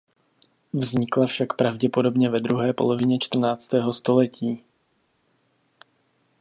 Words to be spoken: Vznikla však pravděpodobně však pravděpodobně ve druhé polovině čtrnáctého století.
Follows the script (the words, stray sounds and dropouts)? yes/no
no